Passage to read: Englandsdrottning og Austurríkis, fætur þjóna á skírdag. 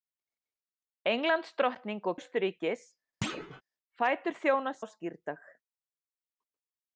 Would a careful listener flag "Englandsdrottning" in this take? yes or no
no